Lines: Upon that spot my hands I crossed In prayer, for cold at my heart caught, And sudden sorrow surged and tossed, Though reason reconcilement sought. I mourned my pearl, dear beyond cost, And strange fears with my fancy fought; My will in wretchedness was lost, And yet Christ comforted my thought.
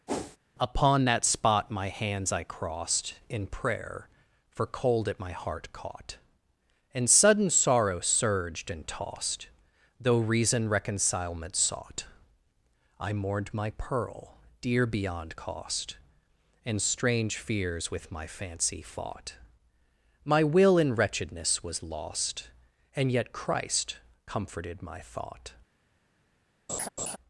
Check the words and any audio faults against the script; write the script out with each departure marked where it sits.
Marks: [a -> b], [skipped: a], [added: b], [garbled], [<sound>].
[whoosh] Upon that spot my hands I crossed In prayer, for cold at my heart caught, And sudden sorrow surged and tossed, Though reason reconcilement sought. I mourned my pearl, dear beyond cost, And strange fears with my fancy fought; My will in wretchedness was lost, And yet Christ comforted my thought. [laugh]